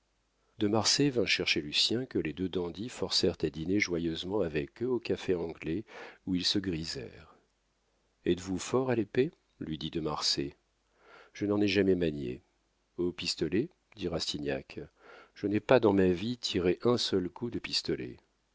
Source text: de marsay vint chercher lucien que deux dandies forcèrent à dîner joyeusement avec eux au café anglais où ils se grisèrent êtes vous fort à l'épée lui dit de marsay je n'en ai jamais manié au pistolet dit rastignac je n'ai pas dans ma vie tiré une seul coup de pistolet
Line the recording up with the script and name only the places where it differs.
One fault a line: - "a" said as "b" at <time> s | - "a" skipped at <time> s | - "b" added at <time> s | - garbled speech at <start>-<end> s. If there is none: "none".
- "les" added at 2.2 s
- "une" said as "un" at 16.8 s